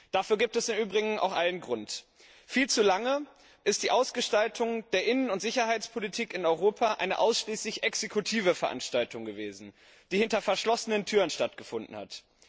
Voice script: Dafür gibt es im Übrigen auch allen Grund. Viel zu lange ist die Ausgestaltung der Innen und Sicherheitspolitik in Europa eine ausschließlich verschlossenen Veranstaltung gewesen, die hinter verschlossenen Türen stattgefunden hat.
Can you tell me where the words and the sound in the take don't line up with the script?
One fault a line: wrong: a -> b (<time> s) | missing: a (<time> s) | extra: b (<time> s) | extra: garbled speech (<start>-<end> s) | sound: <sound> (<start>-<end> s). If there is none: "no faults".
wrong: verschlossenen -> exekutive (7.8 s)